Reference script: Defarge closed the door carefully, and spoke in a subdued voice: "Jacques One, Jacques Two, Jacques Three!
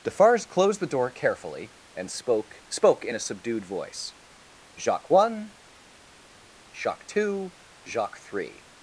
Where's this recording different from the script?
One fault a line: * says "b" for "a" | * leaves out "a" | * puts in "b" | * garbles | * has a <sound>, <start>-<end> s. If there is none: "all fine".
* puts in "spoke"